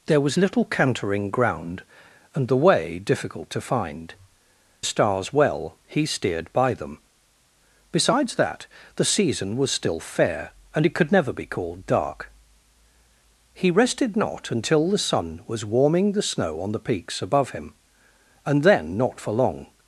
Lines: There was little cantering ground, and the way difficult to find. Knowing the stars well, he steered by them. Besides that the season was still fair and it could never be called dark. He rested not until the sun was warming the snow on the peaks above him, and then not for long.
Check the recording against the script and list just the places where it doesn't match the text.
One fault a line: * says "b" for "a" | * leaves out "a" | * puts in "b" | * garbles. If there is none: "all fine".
* leaves out "Knowing the"